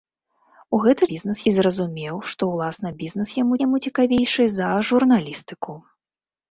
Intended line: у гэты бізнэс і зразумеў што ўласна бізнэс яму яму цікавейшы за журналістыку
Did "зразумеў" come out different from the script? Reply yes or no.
no